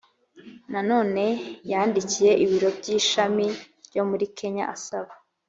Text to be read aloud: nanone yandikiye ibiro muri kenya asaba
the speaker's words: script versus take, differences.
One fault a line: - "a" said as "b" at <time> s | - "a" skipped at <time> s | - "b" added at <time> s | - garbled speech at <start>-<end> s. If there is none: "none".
- "by ishami byo" added at 2.8 s